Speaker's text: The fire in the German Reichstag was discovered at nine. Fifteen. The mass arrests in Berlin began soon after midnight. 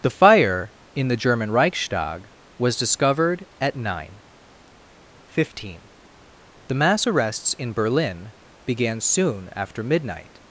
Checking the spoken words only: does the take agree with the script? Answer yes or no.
yes